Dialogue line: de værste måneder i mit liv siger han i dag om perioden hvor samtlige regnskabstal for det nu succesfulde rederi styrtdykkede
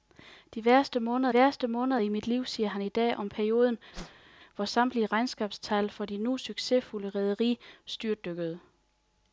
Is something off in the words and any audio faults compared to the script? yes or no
yes